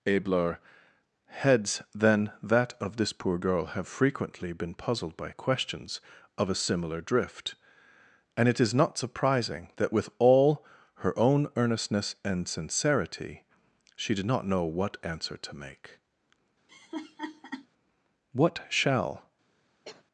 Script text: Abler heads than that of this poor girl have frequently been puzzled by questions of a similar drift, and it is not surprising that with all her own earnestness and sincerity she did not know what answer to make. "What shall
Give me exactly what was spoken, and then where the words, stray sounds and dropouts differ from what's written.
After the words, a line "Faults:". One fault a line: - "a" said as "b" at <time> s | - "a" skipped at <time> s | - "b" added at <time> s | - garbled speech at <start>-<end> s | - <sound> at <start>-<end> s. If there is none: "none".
Abler heads than that of this poor girl have frequently been puzzled by questions of a similar drift, and it is not surprising that with all her own earnestness and sincerity she did not know what answer to make. "What shall
Faults:
- laugh at 16.7-17.7 s
- cough at 19.8-20.0 s